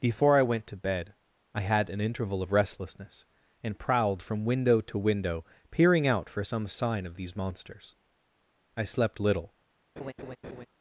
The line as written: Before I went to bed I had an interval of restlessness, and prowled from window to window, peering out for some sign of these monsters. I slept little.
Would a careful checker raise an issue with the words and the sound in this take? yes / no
yes